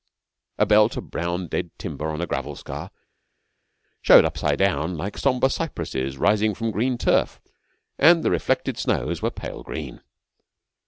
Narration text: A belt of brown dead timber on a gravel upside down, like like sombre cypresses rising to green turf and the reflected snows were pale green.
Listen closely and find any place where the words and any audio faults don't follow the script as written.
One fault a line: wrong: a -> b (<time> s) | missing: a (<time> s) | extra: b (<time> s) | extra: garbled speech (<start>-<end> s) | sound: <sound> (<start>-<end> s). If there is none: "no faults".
extra: scar showed (2.5 s)
missing: like (5.2 s)
wrong: to -> from (6.5 s)